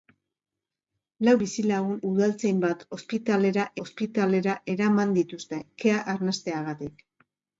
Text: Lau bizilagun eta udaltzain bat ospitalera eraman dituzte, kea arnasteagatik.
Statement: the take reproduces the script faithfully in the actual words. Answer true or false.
false